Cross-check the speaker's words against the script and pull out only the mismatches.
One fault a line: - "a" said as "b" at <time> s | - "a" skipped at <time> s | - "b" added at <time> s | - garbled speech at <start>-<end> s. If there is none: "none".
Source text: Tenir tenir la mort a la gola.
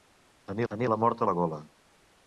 none